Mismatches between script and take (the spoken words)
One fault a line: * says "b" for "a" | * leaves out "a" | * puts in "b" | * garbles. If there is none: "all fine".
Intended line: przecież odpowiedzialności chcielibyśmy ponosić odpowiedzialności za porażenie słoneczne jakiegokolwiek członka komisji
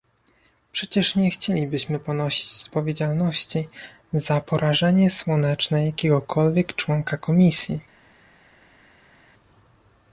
* says "nie" for "odpowiedzialności"